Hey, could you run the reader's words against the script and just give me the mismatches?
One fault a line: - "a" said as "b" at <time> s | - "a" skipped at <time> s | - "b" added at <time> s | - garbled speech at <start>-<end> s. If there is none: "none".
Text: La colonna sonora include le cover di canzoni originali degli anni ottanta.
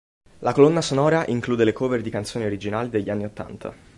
none